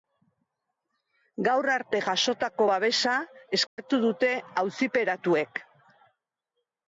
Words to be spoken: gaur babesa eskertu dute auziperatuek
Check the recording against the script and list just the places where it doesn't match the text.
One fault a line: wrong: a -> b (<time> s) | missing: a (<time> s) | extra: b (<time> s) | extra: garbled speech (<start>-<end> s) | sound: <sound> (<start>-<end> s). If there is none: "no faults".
extra: arte jasotako (1.7 s)
sound: dropout (3.7-3.8 s)